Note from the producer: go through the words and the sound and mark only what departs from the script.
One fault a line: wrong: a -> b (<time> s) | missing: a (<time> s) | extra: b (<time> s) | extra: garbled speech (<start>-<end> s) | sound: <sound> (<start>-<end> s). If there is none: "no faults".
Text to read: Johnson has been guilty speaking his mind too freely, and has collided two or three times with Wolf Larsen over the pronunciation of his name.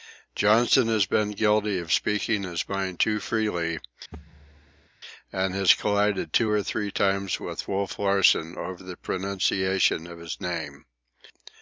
extra: of (1.8 s)
sound: thud (4.1-4.9 s)